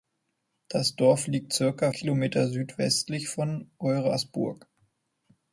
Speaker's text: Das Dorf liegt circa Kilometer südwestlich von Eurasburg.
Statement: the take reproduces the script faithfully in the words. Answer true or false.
true